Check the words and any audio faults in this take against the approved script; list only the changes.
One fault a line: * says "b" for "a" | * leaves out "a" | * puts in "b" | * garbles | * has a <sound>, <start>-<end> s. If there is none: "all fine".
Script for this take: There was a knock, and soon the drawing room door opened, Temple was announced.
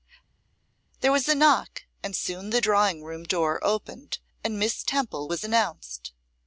* puts in "and Miss"